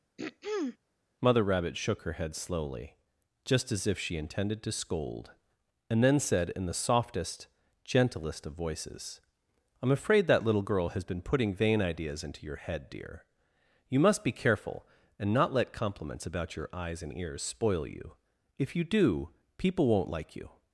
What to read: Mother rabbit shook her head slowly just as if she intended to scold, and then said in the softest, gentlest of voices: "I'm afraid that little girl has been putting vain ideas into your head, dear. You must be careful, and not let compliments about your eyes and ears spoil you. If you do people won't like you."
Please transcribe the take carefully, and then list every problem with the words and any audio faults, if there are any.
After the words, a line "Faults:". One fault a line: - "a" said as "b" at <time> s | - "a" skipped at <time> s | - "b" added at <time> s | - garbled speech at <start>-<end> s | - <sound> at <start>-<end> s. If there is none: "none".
Mother rabbit shook her head slowly just as if she intended to scold, and then said in the softest, gentlest of voices: "I'm afraid that little girl has been putting vain ideas into your head, dear. You must be careful, and not let compliments about your eyes and ears spoil you. If you do people won't like you."
Faults:
- throat clearing at 0.2-0.8 s